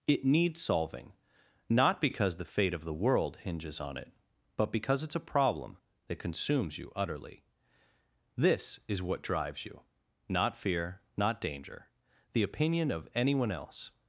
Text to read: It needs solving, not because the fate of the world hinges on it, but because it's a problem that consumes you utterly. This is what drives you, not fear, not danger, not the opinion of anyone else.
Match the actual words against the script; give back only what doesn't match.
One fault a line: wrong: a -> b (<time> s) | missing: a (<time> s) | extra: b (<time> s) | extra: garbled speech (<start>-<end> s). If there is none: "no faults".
missing: not (11.9 s)